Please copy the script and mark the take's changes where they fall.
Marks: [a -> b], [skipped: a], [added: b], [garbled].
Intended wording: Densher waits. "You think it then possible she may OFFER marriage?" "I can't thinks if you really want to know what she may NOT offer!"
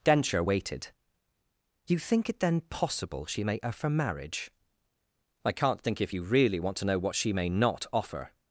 Densher [waits. -> waited] "You think it then possible she may OFFER marriage?" "I can't [thinks -> think] if you really want to know what she may NOT offer!"